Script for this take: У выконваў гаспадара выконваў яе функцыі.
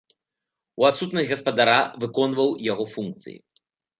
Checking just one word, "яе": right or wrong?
wrong